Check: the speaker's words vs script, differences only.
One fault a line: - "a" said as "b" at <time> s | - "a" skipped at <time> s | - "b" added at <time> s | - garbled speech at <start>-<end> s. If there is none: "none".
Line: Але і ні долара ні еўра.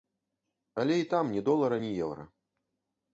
- "там" added at 1.1 s